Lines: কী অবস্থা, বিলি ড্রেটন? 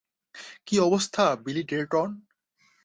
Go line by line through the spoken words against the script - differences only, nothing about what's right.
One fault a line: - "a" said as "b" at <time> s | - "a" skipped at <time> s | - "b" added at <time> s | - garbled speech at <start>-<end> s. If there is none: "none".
none